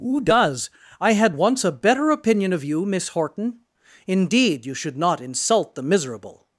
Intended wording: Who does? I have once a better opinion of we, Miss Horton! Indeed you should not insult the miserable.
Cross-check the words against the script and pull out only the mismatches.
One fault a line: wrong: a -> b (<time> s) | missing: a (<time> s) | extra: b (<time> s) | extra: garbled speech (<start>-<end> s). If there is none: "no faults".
wrong: have -> had (1.1 s)
wrong: we -> you (2.6 s)